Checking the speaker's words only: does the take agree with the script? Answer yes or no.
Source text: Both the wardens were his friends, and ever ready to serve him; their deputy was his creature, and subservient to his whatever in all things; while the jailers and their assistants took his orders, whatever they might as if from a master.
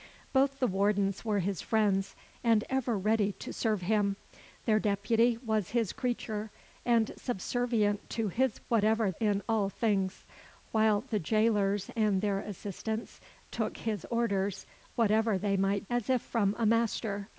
yes